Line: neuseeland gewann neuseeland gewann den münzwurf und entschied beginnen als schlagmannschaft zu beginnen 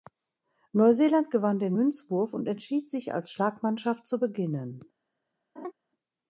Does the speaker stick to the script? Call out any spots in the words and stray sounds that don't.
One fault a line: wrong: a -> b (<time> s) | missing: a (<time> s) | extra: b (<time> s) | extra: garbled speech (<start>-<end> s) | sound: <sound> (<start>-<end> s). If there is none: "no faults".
missing: neuseeland gewann (1.6 s)
wrong: beginnen -> sich (2.9 s)
sound: laugh (5.6-5.7 s)